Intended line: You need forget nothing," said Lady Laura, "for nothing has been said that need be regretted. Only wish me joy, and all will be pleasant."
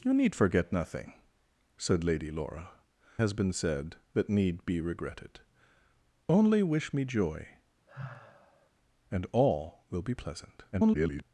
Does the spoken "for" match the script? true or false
false